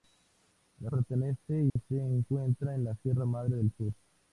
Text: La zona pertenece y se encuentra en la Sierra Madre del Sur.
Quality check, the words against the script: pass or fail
fail